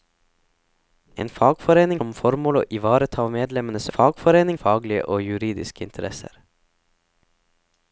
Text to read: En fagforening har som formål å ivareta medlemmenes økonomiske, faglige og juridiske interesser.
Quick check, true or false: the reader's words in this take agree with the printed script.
false